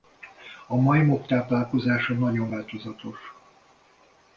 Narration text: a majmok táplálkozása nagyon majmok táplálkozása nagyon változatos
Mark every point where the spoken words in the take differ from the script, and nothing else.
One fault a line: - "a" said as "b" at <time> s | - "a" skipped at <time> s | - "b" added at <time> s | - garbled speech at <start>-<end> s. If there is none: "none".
- "majmok táplálkozása nagyon" skipped at 2.5 s